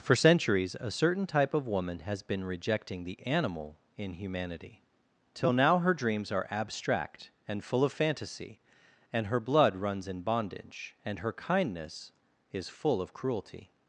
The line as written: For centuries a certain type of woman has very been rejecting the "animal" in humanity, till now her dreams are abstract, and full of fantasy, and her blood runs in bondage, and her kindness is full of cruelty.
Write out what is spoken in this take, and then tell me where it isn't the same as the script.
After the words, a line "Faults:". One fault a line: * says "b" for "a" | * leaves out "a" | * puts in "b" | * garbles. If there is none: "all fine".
For centuries a certain type of woman has been rejecting the "animal" in humanity, till now her dreams are abstract, and full of fantasy, and her blood runs in bondage, and her kindness is full of cruelty.
Faults:
* leaves out "very"